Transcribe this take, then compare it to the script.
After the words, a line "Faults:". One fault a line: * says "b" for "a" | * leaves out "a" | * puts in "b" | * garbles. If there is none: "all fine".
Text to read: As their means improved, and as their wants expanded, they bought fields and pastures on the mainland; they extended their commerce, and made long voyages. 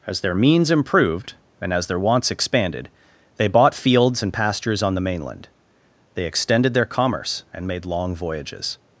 As their means improved, and as their wants expanded, they bought fields and pastures on the mainland; they extended their commerce, and made long voyages.
Faults:
all fine